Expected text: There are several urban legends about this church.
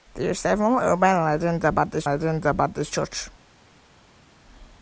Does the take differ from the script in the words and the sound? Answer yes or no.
yes